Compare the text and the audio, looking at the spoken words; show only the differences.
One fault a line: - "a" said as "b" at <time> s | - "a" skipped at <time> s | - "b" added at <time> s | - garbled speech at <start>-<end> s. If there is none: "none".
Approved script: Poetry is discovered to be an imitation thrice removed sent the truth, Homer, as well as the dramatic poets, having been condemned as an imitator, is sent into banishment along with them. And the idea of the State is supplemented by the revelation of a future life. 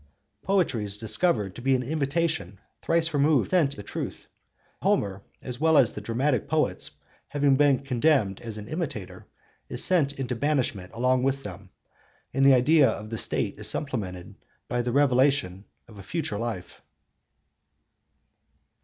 none